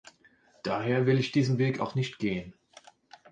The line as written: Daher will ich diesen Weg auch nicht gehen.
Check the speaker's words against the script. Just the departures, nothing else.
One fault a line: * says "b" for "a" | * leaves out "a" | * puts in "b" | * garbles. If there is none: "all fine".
all fine